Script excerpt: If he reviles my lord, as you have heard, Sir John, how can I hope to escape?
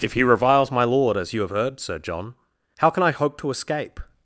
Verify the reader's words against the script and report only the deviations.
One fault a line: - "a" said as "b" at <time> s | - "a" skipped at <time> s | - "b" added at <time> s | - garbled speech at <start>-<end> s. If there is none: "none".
none